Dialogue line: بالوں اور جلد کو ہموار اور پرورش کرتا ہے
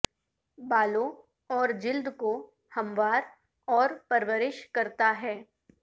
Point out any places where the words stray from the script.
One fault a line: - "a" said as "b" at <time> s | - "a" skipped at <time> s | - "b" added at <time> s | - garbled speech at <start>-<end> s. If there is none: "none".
none